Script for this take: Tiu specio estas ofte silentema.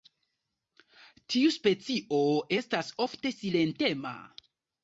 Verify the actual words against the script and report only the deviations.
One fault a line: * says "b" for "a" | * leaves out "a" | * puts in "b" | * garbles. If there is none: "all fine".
all fine